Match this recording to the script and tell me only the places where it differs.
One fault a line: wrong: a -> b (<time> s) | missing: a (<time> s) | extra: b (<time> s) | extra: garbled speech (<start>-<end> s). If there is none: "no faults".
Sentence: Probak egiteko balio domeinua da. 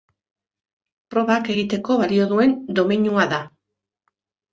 extra: duen (2.3 s)